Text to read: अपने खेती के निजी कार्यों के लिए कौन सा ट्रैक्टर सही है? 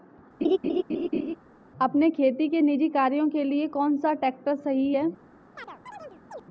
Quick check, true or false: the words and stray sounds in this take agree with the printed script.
false